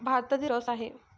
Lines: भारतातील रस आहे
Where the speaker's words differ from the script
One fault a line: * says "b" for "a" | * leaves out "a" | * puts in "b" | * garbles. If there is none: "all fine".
all fine